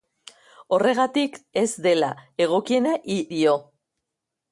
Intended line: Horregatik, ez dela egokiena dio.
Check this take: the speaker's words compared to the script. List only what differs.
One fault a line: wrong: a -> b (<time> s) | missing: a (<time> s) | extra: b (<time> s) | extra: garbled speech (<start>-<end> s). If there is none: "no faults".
no faults